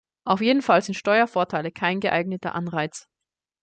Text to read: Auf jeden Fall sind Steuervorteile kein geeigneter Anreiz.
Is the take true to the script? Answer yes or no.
yes